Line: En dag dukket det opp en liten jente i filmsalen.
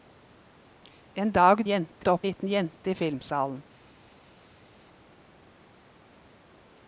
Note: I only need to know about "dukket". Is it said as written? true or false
false